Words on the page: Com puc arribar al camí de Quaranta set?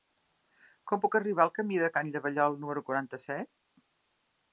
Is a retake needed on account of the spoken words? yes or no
yes